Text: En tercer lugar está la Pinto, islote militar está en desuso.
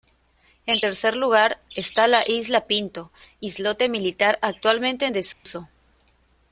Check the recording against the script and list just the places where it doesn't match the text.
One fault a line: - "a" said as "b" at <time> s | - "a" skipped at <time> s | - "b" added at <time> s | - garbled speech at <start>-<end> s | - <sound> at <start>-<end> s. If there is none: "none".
- "isla" added at 2.2 s
- "está" said as "actualmente" at 4.4 s
- dropout at 5.3-5.5 s